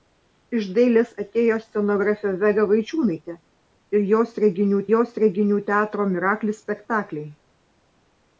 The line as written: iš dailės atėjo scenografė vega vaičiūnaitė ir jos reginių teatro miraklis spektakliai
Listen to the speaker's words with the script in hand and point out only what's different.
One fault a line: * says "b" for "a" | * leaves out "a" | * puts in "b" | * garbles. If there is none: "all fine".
* puts in "jos reginių"